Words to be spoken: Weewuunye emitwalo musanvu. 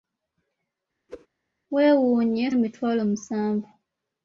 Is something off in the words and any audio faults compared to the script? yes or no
yes